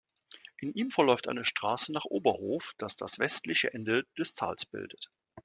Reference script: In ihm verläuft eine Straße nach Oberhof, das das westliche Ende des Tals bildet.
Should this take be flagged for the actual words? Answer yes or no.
no